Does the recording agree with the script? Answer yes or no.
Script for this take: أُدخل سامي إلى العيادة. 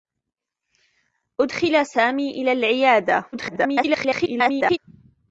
no